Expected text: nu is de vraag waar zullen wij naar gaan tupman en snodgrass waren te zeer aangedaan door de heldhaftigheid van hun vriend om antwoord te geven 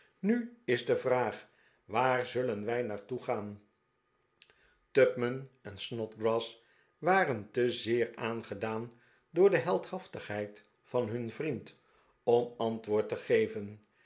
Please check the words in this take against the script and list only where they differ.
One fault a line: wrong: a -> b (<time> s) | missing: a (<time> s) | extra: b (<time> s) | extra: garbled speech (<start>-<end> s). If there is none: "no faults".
extra: toe (3.0 s)